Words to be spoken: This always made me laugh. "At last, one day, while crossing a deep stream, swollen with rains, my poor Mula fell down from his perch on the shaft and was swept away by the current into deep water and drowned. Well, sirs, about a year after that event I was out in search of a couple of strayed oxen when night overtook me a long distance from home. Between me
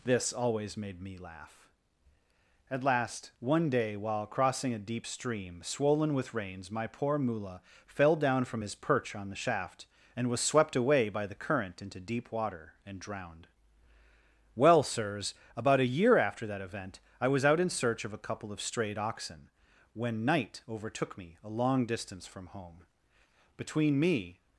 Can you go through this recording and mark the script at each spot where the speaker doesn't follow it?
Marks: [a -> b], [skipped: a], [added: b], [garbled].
This always made me laugh. "At last, one day, while crossing a deep stream, swollen with rains, my poor Mula fell down from his perch on the shaft and was swept away by the current into deep water and drowned. Well, sirs, about a year after that event I was out in search of a couple of strayed oxen when night overtook me a long distance from home. Between me